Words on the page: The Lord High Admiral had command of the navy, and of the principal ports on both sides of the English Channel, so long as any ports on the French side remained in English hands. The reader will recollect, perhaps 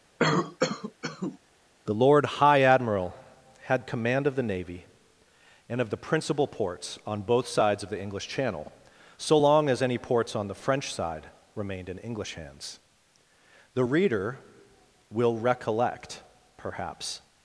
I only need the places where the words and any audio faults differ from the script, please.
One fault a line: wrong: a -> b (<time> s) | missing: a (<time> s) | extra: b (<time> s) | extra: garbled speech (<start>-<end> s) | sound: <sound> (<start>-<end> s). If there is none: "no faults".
sound: cough (0.2-1.4 s)